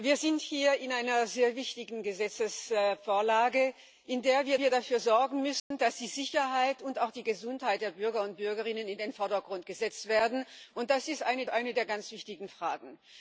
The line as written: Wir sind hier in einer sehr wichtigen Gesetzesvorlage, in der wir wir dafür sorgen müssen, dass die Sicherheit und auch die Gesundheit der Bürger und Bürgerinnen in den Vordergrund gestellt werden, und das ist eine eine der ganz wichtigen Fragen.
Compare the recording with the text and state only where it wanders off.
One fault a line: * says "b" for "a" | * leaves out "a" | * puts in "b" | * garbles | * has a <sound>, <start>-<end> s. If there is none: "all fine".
* has a dropout, 5.6-5.7 s